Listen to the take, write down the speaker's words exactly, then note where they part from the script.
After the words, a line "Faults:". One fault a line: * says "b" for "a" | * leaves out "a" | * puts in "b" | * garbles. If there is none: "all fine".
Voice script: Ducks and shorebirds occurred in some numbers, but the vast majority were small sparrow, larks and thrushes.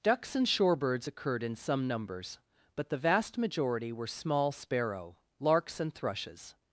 Ducks and shorebirds occurred in some numbers, but the vast majority were small sparrow, larks and thrushes.
Faults:
all fine